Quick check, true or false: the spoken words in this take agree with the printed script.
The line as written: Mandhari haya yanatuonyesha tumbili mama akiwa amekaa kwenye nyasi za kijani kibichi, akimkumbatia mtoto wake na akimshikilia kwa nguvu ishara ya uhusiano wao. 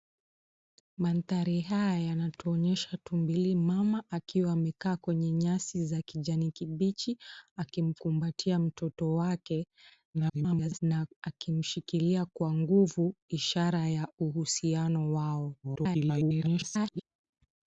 false